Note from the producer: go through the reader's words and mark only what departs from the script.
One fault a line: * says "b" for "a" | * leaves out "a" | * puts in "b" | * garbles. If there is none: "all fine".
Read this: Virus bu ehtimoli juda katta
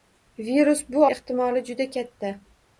all fine